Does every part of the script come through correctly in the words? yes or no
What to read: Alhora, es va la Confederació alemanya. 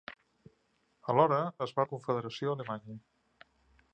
yes